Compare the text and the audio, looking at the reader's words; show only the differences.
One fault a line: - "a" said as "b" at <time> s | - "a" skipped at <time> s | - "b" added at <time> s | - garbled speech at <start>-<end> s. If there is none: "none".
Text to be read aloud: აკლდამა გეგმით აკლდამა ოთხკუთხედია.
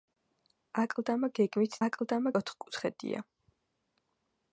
none